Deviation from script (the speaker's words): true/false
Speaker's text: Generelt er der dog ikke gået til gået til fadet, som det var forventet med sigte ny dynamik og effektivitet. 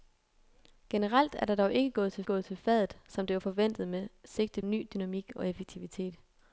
false